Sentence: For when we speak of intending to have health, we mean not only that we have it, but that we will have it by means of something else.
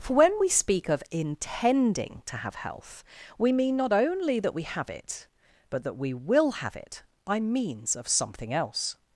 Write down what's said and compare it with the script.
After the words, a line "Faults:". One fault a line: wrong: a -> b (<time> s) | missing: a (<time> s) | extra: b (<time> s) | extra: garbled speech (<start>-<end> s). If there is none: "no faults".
For when we speak of intending to have health, we mean not only that we have it, but that we will have it by means of something else.
Faults:
no faults